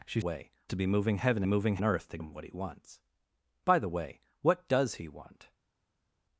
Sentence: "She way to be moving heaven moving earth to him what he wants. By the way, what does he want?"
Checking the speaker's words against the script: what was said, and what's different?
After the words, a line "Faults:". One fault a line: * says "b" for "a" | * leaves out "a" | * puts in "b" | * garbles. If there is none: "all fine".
"She way to be moving heaven moving earth to him what he wants. By the way, what does he want?"
Faults:
all fine